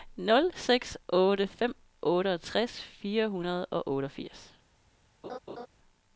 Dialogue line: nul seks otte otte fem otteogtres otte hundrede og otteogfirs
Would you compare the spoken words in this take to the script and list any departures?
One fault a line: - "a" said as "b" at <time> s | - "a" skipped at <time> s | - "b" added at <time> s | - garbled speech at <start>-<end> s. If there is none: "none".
- "otte" skipped at 1.5 s
- "otte" said as "fire" at 2.8 s